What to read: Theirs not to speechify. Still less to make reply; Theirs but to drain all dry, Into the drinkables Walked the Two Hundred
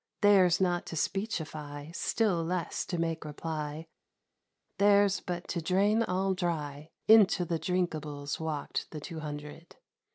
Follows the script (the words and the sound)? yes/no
yes